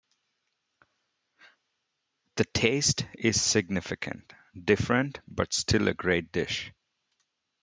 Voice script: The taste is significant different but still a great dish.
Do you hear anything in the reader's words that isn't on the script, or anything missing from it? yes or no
no